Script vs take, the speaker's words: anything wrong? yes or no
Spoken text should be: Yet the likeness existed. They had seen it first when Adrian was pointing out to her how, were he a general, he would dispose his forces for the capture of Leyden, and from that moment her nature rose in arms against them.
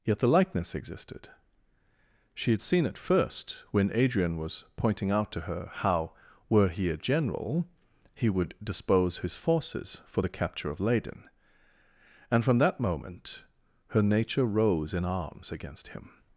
yes